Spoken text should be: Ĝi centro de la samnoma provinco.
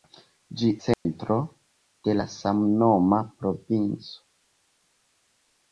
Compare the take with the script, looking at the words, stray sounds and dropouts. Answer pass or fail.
fail